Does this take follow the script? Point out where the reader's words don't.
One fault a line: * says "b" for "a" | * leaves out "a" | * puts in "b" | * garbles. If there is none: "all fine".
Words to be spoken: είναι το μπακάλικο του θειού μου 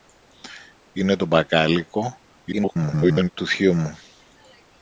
* garbles